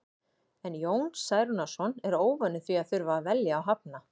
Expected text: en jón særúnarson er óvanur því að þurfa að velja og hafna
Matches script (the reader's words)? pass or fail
pass